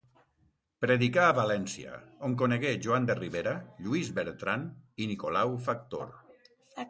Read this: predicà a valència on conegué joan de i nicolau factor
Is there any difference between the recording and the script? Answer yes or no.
yes